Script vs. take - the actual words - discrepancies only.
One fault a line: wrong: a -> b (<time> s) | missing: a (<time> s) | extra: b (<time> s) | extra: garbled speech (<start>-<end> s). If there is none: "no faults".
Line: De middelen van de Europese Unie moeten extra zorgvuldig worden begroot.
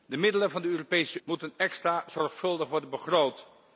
missing: Unie (1.2 s)